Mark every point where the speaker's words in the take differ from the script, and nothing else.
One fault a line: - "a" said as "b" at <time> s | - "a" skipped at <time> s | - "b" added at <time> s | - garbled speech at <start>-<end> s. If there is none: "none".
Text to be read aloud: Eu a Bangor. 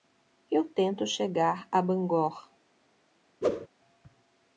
- "tento chegar" added at 0.7 s